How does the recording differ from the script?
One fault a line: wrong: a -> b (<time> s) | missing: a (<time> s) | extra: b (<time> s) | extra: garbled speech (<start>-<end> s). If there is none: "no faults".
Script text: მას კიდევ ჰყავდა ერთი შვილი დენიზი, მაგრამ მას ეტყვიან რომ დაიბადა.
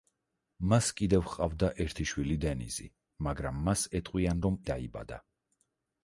no faults